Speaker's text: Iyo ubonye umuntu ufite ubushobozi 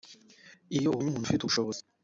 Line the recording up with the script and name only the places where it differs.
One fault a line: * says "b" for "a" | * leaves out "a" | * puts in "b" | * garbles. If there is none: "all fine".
all fine